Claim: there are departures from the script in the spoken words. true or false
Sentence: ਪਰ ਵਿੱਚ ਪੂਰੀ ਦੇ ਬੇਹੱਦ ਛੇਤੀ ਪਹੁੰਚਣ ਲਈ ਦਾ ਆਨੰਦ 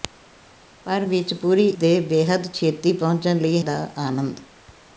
false